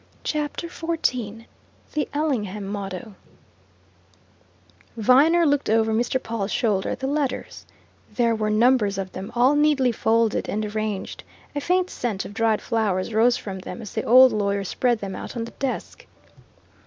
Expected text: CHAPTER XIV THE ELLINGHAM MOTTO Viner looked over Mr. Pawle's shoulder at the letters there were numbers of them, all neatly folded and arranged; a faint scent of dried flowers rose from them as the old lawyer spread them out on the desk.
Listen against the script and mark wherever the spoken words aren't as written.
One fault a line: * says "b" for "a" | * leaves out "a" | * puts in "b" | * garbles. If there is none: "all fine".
all fine